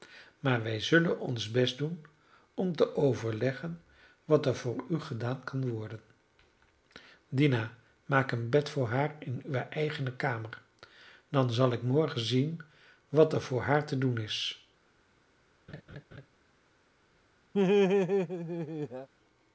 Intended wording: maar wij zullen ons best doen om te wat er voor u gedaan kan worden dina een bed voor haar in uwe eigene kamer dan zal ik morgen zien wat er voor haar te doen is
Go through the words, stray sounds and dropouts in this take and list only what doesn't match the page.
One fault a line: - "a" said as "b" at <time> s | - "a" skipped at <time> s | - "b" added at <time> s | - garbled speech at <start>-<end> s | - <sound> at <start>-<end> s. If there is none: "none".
- "overleggen" added at 3.0 s
- "maak" added at 8.1 s
- laugh at 15.7-16.3 s
- laugh at 17.5-19.1 s